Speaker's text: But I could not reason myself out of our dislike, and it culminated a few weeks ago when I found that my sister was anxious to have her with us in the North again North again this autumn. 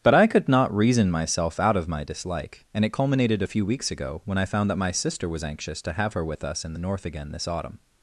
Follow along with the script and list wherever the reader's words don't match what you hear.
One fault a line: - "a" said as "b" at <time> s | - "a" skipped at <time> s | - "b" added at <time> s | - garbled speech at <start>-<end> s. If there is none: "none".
- "our" said as "my" at 1.9 s
- "North again" skipped at 7.3 s